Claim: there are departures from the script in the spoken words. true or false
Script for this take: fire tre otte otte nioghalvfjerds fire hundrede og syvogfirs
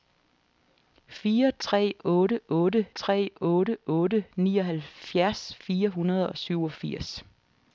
true